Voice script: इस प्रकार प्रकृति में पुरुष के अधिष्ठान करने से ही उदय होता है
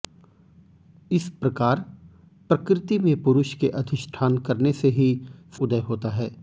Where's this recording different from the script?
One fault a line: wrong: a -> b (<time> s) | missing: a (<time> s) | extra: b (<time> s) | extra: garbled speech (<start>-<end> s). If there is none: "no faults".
no faults